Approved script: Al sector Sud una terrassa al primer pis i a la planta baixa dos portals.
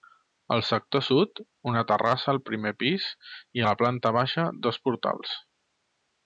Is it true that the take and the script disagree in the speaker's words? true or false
false